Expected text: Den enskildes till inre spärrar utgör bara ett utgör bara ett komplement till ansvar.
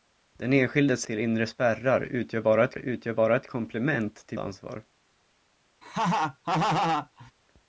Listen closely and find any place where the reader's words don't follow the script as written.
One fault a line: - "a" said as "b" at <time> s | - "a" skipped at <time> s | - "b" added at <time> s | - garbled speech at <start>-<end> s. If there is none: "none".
none